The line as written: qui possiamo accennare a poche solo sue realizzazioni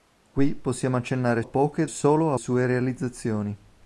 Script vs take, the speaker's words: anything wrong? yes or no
no